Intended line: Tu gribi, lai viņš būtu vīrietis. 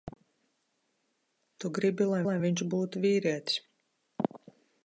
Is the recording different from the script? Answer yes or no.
yes